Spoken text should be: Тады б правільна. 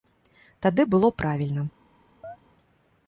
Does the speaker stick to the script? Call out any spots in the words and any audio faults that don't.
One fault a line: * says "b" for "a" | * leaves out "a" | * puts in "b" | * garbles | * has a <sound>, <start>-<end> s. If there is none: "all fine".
* puts in "было"
* has a chirp, 2.2-2.4 s